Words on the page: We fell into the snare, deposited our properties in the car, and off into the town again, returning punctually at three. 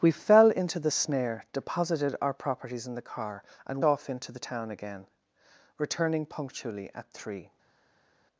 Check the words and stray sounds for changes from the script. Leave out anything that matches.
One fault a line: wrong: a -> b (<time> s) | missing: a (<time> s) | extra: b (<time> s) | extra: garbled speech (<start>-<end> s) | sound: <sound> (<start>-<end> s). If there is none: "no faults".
no faults